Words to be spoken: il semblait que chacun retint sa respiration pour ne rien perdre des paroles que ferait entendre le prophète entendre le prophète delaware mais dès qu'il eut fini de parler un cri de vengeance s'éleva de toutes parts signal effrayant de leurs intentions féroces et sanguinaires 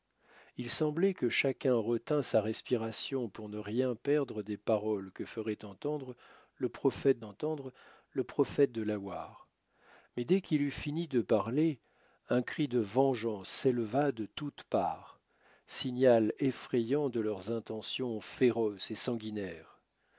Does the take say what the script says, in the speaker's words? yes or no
yes